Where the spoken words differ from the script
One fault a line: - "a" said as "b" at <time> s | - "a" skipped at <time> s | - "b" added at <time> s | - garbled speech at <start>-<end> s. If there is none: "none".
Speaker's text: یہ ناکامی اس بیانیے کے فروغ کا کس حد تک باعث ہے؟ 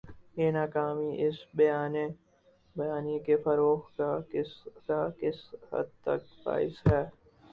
- "کا کس" added at 4.9 s